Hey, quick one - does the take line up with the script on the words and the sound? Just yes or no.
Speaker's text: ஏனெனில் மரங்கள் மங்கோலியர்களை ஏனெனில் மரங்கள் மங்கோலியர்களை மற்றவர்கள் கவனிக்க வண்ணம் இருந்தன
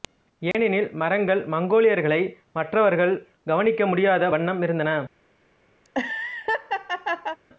no